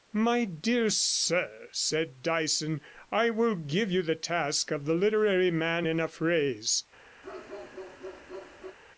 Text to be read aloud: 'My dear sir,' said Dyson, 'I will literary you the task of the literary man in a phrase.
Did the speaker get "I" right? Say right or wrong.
right